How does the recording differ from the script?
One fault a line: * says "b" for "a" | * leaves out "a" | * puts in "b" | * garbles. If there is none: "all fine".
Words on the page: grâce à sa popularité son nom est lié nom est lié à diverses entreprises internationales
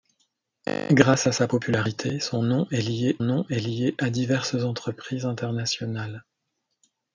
all fine